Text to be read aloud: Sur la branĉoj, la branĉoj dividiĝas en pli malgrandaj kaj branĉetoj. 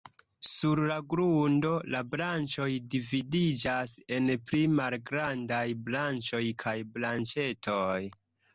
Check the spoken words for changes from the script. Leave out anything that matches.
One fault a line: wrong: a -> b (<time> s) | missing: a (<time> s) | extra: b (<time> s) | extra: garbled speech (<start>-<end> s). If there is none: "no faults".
wrong: branĉoj -> grundo (1.1 s)
extra: branĉoj (5.9 s)